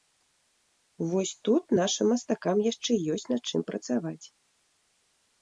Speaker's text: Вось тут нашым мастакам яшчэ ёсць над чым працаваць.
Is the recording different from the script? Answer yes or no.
no